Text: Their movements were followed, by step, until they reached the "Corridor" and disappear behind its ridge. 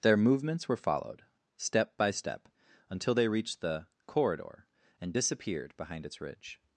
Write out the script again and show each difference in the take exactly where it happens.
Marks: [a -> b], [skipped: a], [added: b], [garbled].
Their movements were followed, [added: step] by step, until they reached the "Corridor" and [disappear -> disappeared] behind its ridge.